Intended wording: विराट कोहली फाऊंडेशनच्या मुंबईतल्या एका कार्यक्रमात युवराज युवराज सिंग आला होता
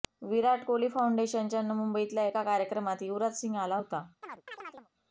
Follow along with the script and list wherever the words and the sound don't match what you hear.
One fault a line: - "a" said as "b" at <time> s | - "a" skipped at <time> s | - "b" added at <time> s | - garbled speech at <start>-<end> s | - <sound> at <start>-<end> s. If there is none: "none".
- "युवराज" skipped at 3.4 s
- chirp at 4.2-4.9 s